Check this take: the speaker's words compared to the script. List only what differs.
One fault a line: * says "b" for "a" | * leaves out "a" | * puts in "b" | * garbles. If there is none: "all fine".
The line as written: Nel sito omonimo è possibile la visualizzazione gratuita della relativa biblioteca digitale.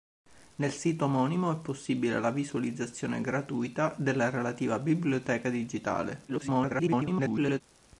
* garbles